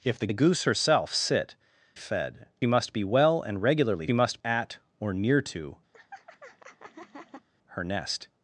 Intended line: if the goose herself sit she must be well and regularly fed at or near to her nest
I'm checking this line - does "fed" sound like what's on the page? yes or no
no